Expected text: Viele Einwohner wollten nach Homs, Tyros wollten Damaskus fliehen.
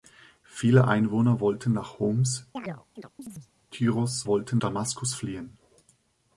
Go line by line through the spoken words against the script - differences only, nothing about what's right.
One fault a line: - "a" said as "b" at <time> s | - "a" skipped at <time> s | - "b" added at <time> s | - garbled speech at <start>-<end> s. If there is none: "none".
none